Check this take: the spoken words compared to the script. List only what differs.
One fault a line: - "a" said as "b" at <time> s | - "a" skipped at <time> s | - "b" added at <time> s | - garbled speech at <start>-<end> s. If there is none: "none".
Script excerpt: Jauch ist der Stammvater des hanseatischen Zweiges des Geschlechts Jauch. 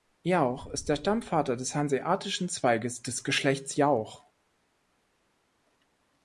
none